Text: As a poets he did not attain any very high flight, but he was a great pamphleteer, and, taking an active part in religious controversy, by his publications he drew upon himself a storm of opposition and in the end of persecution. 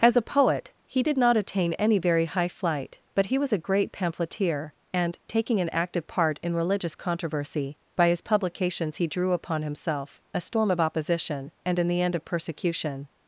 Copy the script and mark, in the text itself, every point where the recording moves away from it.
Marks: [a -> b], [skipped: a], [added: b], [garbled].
As a [poets -> poet] he did not attain any very high flight, but he was a great pamphleteer, and, taking an active part in religious controversy, by his publications he drew upon himself a storm of opposition and in the end of persecution.